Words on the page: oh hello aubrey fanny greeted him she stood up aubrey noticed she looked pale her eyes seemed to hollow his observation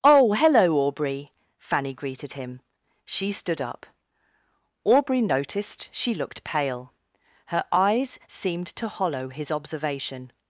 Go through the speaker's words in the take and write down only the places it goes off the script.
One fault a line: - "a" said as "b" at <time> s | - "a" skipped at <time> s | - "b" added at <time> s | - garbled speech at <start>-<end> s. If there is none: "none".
none